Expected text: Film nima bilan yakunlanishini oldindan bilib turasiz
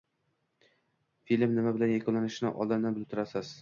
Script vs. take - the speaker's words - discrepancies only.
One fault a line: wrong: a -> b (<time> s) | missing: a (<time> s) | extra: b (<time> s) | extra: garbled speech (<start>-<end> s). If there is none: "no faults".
no faults